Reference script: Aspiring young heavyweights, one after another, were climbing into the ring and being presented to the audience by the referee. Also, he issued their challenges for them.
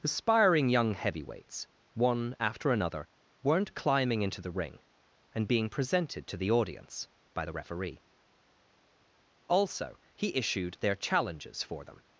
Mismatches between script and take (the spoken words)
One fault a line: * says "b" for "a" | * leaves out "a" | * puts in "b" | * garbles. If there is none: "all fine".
* says "weren't" for "were"